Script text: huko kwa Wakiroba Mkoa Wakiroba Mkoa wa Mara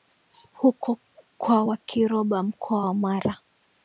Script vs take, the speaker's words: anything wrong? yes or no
yes